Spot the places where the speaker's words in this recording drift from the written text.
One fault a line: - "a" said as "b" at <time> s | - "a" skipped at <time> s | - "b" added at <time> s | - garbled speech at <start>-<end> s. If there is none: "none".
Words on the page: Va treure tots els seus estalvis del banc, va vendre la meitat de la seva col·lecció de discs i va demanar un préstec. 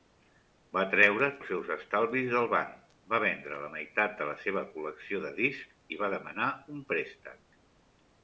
- "tots" skipped at 1.3 s